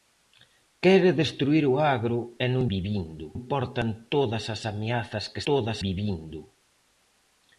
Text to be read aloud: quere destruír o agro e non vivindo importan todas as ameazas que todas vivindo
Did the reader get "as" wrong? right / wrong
right